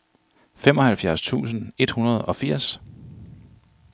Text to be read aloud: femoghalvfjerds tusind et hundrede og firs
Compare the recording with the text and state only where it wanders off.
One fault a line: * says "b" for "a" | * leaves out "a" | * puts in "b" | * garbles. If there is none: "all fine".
all fine